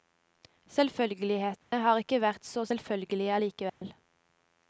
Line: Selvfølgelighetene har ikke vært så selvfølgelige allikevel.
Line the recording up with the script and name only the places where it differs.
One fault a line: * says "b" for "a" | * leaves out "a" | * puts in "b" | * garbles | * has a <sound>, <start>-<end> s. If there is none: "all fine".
* has a dropout, 1.6-1.7 s
* has a dropout, 3.7-3.8 s